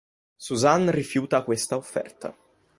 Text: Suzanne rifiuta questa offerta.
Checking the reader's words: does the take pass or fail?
pass